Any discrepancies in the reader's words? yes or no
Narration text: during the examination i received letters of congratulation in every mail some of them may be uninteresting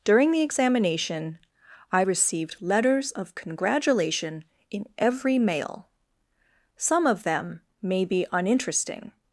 no